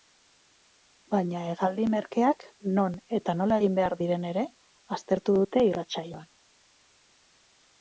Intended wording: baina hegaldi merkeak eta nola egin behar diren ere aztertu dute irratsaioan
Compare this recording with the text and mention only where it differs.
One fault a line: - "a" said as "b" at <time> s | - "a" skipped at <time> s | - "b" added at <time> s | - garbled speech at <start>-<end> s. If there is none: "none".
- "non" added at 2.8 s